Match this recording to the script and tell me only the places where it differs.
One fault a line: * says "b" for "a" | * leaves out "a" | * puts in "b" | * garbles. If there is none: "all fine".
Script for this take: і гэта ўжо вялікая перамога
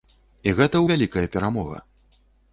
* leaves out "ўжо"